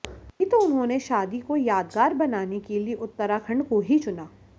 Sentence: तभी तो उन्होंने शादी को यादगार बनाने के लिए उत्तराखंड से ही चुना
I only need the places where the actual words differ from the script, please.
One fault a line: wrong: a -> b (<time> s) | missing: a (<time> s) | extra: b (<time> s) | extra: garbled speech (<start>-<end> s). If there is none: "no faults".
wrong: से -> को (3.7 s)